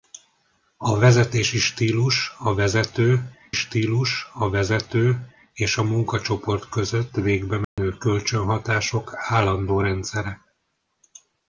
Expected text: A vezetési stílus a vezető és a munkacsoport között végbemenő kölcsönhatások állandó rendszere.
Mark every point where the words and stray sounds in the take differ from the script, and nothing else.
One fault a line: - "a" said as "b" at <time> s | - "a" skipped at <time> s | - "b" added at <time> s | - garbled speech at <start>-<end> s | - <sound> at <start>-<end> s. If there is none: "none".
- "stílus a vezető" added at 3.5 s
- dropout at 7.6-7.8 s